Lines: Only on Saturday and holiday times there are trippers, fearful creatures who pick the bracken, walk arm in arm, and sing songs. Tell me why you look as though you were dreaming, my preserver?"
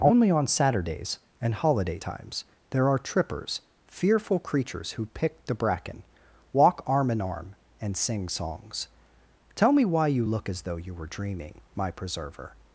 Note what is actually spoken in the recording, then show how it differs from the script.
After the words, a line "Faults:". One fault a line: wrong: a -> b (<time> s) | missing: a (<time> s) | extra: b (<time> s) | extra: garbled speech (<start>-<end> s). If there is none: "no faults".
Only on Saturdays and holiday times there are trippers, fearful creatures who pick the bracken, walk arm in arm, and sing songs. Tell me why you look as though you were dreaming, my preserver?"
Faults:
wrong: Saturday -> Saturdays (0.5 s)